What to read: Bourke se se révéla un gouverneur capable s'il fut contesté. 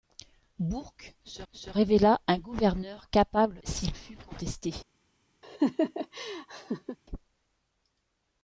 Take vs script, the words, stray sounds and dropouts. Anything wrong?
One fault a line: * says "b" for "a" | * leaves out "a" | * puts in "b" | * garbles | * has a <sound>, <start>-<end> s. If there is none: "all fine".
* has a laugh, 5.4-7.0 s